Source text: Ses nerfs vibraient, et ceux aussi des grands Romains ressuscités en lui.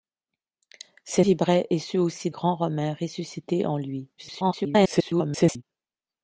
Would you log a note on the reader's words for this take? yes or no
yes